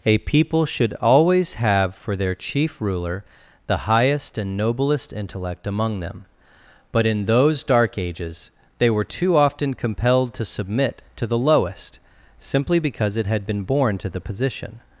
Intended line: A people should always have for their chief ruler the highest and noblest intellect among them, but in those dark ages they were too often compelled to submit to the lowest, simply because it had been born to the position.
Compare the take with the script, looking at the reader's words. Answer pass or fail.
pass